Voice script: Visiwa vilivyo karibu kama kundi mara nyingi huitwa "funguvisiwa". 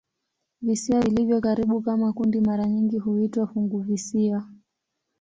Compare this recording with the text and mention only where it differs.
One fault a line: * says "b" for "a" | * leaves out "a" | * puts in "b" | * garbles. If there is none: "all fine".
all fine